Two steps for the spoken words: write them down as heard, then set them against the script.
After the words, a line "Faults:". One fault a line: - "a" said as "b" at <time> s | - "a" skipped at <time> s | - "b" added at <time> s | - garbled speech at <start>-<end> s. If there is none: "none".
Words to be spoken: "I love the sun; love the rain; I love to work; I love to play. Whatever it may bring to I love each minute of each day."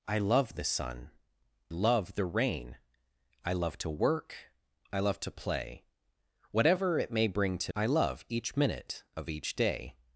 "I love the sun; love the rain; I love to work; I love to play. Whatever it may bring to I love each minute of each day."
Faults:
none